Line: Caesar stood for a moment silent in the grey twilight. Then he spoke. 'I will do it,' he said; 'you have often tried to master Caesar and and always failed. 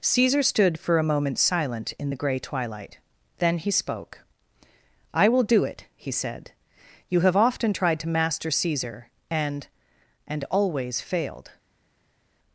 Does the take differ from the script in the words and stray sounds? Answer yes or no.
no